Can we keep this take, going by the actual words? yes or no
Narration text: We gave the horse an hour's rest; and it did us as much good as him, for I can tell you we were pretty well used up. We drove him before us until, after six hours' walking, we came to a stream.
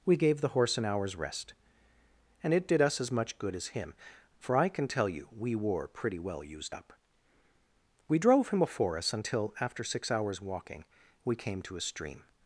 yes